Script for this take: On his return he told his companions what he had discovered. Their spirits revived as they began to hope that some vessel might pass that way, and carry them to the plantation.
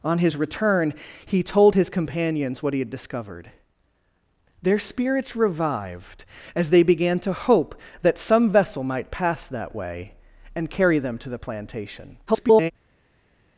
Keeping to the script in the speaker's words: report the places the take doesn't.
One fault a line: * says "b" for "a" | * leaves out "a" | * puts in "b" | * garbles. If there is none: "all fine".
* garbles